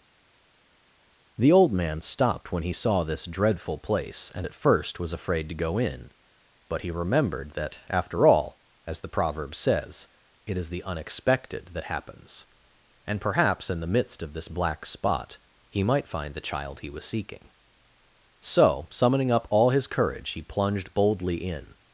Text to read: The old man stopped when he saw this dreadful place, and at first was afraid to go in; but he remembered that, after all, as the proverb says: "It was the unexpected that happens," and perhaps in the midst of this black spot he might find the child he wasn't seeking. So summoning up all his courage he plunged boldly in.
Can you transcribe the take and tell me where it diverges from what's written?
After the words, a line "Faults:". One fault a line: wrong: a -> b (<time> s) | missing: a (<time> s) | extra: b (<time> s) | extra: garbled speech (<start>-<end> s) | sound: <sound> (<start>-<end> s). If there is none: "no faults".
The old man stopped when he saw this dreadful place, and at first was afraid to go in; but he remembered that, after all, as the proverb says: "It is the unexpected that happens," and perhaps in the midst of this black spot he might find the child he was seeking. So summoning up all his courage he plunged boldly in.
Faults:
wrong: was -> is (10.6 s)
wrong: wasn't -> was (16.9 s)